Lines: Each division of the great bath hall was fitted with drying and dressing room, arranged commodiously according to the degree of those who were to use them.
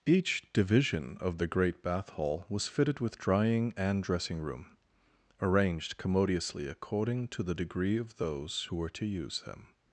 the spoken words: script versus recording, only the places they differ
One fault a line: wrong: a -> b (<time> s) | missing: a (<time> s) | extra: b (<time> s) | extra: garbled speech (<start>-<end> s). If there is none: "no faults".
no faults